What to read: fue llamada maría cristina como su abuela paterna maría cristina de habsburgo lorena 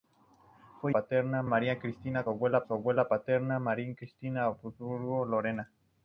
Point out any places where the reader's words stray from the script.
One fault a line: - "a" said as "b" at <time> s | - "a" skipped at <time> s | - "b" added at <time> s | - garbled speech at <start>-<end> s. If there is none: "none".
- "llamada" said as "paterna" at 0.9 s
- "como" said as "abuela" at 2.3 s